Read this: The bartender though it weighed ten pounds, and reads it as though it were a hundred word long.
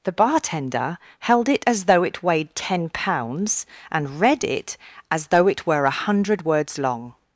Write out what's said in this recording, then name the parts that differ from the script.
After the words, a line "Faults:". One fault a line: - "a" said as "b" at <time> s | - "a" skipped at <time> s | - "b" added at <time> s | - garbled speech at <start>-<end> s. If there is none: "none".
The bartender held it as though it weighed ten pounds, and read it as though it were a hundred words long.
Faults:
- "held it as" added at 1.2 s
- "reads" said as "read" at 4.2 s
- "word" said as "words" at 6.4 s